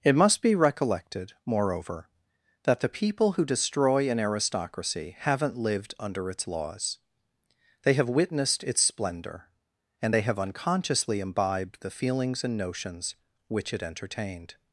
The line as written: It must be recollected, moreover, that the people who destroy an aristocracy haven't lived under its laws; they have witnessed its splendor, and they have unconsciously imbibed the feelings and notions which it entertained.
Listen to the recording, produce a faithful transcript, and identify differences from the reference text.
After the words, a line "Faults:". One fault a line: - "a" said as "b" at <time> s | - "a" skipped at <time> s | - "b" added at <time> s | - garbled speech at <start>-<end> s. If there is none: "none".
It must be recollected, moreover, that the people who destroy an aristocracy haven't lived under its laws; they have witnessed its splendor, and they have unconsciously imbibed the feelings and notions which it entertained.
Faults:
none